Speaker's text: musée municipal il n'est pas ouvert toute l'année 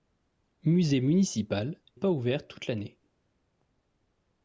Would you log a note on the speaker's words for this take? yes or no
yes